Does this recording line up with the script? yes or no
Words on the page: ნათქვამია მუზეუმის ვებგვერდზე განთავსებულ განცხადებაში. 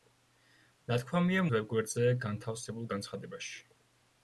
no